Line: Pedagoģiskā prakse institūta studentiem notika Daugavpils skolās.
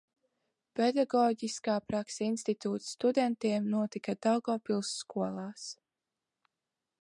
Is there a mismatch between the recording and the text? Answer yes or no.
no